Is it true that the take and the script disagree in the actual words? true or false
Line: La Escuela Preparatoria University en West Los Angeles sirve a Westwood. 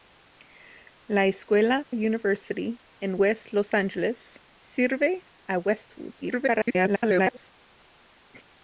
true